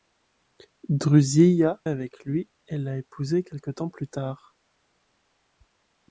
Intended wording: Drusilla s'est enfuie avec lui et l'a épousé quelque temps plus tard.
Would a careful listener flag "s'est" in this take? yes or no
yes